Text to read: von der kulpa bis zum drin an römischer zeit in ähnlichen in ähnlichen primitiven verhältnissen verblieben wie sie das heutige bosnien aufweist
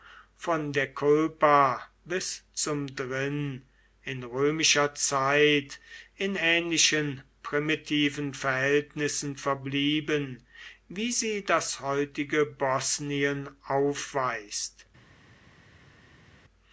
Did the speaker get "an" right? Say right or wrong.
wrong